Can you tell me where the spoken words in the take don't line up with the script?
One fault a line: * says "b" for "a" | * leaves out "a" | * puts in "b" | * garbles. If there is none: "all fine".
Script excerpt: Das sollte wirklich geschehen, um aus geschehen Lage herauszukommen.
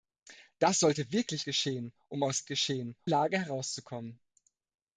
all fine